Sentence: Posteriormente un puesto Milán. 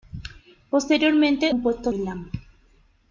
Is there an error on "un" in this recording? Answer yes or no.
no